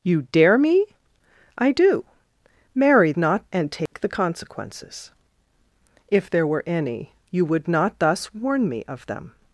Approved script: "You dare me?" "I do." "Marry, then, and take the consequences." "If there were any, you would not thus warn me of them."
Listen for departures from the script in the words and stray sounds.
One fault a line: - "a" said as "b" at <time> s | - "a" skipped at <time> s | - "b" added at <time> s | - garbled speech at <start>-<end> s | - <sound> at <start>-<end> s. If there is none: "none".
- "then" said as "not" at 3.2 s
- dropout at 3.9-3.9 s